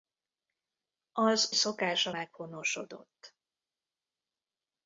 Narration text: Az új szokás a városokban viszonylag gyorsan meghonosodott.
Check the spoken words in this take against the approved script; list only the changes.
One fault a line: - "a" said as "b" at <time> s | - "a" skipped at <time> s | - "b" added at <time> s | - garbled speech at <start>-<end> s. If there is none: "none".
- "új" skipped at 1.5 s
- "városokban viszonylag gyorsan" skipped at 2.1 s